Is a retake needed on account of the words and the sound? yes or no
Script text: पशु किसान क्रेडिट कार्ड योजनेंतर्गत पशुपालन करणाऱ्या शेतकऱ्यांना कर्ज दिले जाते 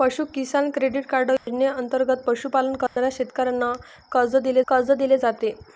yes